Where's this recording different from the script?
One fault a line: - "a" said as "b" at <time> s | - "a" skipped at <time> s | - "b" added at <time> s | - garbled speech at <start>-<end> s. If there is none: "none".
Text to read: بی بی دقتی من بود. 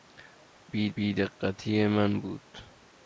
none